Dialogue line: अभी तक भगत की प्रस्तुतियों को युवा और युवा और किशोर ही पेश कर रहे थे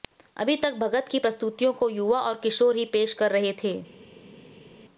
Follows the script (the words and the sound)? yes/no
no